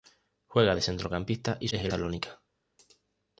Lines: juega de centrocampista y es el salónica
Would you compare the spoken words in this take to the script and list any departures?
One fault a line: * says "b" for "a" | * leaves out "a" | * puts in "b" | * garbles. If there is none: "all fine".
all fine